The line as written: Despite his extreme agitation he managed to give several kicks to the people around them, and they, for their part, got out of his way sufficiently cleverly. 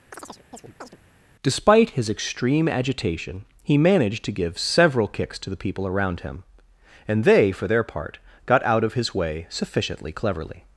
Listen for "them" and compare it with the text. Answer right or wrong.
wrong